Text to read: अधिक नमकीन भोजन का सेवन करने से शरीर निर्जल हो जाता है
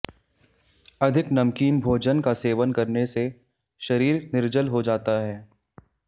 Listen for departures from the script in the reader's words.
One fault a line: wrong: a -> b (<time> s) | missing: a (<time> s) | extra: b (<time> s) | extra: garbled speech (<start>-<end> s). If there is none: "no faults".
no faults